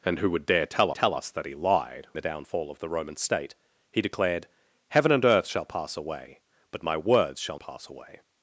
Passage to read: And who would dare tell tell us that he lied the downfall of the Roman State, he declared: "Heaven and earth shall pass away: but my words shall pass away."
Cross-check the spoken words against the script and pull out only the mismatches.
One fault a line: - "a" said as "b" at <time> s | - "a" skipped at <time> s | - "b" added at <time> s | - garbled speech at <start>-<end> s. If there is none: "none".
none